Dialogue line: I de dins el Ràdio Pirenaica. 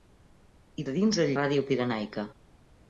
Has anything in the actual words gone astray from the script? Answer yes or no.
no